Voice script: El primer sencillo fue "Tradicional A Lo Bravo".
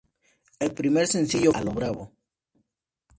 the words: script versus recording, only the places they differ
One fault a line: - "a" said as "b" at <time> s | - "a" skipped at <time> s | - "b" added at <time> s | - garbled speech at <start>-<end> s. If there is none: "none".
- "fue Tradicional" skipped at 1.5 s